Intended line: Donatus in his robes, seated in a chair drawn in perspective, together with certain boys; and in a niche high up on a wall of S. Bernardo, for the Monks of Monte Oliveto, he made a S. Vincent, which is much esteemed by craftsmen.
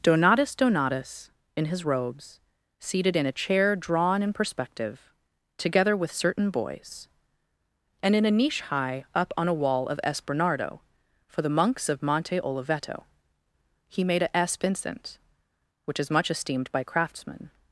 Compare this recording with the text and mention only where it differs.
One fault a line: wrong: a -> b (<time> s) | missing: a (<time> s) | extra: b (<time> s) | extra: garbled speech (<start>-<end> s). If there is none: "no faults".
extra: donatus (0.6 s)